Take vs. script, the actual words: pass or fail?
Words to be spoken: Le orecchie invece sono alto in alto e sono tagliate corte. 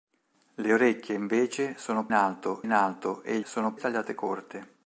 pass